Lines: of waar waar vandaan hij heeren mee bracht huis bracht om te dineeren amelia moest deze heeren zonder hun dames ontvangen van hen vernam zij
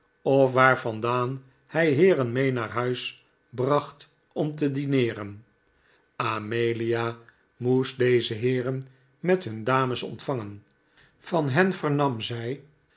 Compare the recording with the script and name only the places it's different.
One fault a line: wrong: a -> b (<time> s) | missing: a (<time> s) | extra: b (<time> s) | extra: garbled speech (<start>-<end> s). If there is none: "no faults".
missing: waar (0.8 s)
wrong: bracht -> naar (2.5 s)
wrong: zonder -> met (9.2 s)